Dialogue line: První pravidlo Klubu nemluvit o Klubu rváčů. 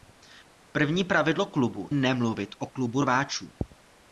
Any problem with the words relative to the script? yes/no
no